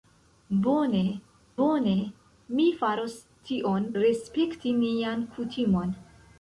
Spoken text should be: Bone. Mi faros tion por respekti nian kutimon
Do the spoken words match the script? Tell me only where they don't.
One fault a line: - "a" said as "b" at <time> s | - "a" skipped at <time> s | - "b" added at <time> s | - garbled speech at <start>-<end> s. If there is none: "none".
- "bone" added at 1.6 s
- "por" skipped at 3.9 s